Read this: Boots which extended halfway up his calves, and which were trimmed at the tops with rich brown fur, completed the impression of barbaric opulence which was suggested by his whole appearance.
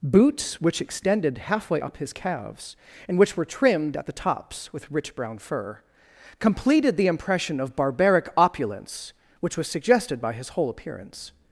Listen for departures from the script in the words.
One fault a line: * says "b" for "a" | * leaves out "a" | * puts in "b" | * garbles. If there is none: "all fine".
all fine